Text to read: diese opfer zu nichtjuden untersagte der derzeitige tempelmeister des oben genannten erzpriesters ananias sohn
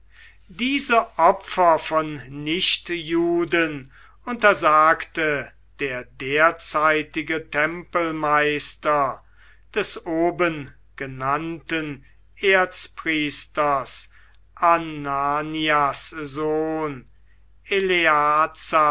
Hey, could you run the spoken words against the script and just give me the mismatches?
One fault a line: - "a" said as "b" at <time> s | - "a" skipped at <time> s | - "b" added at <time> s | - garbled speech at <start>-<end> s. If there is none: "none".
- "zu" said as "von" at 1.8 s